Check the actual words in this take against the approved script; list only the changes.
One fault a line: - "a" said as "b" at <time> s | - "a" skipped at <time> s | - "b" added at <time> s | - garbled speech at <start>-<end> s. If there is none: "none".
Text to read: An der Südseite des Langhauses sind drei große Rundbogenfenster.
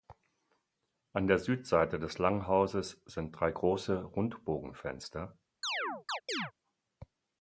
none